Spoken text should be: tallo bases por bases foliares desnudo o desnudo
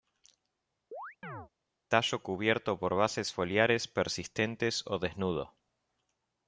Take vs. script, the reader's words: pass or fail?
fail